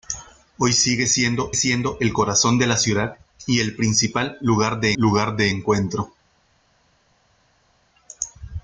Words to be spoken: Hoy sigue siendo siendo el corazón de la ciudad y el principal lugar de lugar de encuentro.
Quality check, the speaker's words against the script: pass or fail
pass